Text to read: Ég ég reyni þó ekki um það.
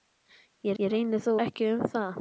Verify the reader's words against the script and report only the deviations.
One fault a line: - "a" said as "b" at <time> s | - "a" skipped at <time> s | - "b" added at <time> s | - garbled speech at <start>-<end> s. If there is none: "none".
none